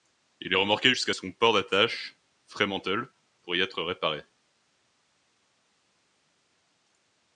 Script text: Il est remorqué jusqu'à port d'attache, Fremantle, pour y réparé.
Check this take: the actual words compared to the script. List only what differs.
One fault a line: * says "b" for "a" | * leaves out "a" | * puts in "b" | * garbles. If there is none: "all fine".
* puts in "son"
* puts in "être"